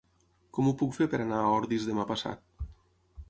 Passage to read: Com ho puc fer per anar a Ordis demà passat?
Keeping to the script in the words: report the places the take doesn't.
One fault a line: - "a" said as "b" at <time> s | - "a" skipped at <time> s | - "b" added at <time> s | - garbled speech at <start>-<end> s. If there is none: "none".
none